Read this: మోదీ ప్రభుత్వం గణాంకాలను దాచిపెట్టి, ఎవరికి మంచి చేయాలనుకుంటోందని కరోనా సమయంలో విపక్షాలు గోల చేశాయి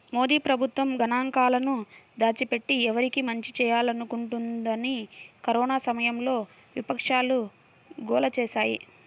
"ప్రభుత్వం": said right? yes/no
yes